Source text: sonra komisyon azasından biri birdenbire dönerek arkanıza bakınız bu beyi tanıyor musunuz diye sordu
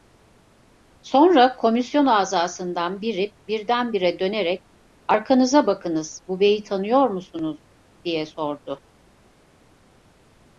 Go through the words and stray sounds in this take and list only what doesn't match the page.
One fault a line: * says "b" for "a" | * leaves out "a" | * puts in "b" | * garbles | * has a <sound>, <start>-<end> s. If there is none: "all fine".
all fine